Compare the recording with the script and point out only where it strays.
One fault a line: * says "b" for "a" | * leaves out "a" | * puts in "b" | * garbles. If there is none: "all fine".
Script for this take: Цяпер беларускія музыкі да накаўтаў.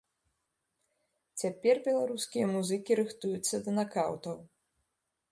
* puts in "рыхтуюцца"